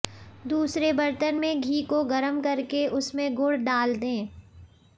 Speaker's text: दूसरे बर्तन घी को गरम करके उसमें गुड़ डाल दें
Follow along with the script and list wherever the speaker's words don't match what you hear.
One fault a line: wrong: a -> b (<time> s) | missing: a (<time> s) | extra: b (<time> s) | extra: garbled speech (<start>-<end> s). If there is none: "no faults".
extra: में (1.3 s)